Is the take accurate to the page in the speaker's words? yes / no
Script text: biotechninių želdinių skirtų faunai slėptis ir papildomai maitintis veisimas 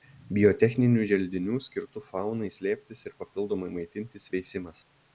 yes